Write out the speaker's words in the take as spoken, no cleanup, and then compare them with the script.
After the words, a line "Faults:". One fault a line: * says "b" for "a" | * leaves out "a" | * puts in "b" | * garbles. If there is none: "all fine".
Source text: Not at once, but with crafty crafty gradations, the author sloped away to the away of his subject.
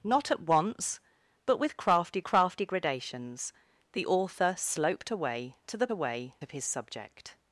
Not at once, but with crafty crafty gradations, the author sloped away to the away of his subject.
Faults:
all fine